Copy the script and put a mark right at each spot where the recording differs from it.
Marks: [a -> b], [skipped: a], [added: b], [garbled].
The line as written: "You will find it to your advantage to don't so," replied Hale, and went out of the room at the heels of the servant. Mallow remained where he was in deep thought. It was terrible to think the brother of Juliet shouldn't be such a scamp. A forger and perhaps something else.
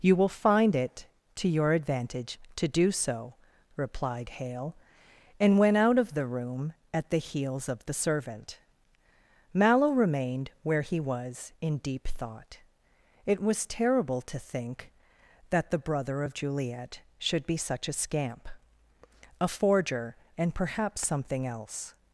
"You will find it to your advantage to [don't -> do] so," replied Hale, and went out of the room at the heels of the servant. Mallow remained where he was in deep thought. It was terrible to think [added: that] the brother of Juliet [shouldn't -> should] be such a scamp. A forger and perhaps something else.